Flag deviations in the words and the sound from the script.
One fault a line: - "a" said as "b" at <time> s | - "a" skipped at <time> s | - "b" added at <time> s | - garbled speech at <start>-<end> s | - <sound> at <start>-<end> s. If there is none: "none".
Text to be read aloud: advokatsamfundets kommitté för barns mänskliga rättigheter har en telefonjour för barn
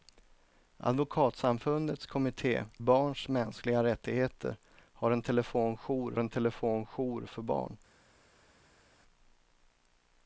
- "för" skipped at 2.6 s
- "en telefonjour" added at 6.2 s